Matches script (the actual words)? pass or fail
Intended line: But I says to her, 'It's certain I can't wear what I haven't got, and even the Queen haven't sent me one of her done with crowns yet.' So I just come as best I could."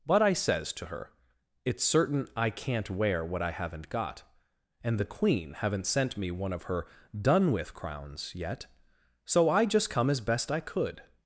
fail